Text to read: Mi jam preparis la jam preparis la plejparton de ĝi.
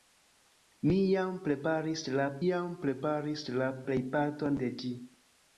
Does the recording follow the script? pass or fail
pass